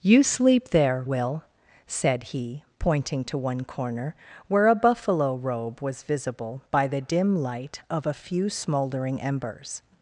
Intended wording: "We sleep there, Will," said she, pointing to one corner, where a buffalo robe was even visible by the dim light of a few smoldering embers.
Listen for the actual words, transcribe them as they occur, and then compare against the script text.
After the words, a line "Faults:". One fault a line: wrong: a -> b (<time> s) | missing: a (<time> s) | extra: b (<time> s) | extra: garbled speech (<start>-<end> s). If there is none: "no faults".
"You sleep there, Will," said he, pointing to one corner, where a buffalo robe was visible by the dim light of a few smoldering embers.
Faults:
wrong: We -> You (0.0 s)
wrong: she -> he (2.2 s)
missing: even (6.0 s)